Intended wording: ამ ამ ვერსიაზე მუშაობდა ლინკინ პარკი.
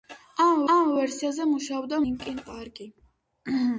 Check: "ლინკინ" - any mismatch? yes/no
no